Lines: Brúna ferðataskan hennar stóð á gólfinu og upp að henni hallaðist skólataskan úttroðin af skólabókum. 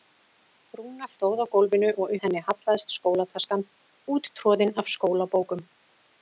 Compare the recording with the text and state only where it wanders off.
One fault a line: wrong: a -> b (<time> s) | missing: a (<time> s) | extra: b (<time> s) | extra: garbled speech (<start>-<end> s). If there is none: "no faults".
missing: ferðataskan hennar (1.1 s)
missing: upp (2.1 s)